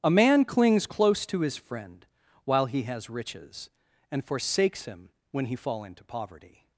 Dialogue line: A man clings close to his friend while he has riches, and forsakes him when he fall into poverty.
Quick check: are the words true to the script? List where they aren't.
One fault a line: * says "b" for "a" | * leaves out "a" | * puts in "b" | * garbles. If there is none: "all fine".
all fine